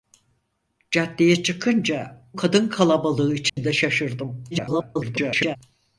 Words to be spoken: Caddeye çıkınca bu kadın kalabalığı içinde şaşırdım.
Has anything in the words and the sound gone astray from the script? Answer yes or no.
yes